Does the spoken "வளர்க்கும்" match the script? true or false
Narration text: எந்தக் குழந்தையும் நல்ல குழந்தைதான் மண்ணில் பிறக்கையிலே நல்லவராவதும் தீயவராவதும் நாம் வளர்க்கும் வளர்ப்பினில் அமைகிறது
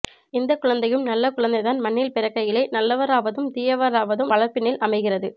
false